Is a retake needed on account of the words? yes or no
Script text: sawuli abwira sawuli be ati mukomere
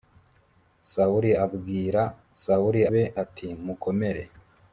no